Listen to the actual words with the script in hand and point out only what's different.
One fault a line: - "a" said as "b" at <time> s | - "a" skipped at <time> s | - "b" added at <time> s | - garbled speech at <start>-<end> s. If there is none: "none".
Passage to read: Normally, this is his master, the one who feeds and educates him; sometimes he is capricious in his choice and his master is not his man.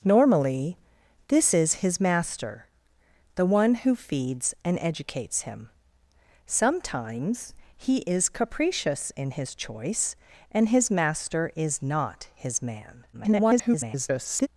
- garbled speech at 13.1-14.5 s